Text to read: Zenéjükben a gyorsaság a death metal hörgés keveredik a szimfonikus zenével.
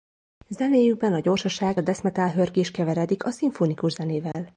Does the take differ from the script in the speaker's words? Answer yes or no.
no